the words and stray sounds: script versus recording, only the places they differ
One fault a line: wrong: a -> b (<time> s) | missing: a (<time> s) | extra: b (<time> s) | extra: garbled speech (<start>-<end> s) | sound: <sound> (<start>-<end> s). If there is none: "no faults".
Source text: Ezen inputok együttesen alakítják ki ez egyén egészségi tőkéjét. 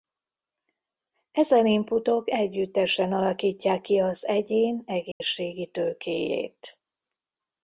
wrong: ez -> az (4.0 s)
sound: dropout (5.1-5.2 s)